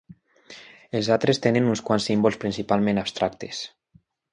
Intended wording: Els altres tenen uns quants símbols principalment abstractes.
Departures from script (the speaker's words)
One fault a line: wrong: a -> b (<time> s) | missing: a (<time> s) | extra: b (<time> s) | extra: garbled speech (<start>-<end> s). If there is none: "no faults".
no faults